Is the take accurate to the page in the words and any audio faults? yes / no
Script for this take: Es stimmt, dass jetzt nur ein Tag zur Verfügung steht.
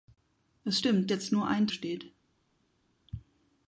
no